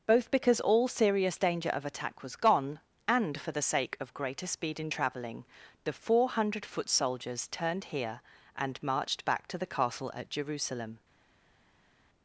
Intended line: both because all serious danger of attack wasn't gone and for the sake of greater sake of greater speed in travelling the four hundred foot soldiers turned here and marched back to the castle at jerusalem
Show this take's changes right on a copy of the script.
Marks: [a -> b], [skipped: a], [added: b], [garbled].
both because all serious danger of attack [wasn't -> was] gone and for the sake of greater [skipped: sake of greater] speed in travelling the four hundred foot soldiers turned here and marched back to the castle at jerusalem